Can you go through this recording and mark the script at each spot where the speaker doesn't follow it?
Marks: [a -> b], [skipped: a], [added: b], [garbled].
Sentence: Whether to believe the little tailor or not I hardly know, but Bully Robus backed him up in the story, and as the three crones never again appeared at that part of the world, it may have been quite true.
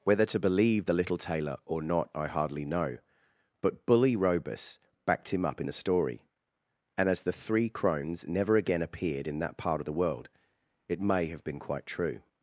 Whether to believe the little tailor or not I hardly know, but Bully Robus backed him up in the story, and as the three crones never again appeared [at -> in] that part of the world, it may have been quite true.